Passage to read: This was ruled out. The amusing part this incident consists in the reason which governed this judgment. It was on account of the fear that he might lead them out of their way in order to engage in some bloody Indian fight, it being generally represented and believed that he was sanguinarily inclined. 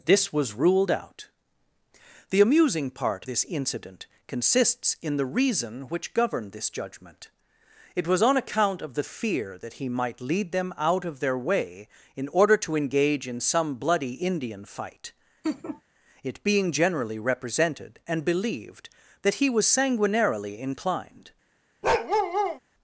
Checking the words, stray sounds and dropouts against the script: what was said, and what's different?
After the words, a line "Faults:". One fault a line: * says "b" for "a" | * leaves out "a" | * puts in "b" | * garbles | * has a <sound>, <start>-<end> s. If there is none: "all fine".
This was ruled out. The amusing part this incident consists in the reason which governed this judgment. It was on account of the fear that he might lead them out of their way in order to engage in some bloody Indian fight, it being generally represented and believed that he was sanguinarily inclined.
Faults:
* has a laugh, 15.4-15.8 s
* has a bark, 21.8-22.6 s